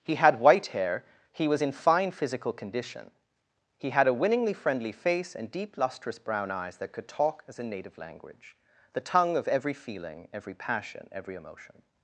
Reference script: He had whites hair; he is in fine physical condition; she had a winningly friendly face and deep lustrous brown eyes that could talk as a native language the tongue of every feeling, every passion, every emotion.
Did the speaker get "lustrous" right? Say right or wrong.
right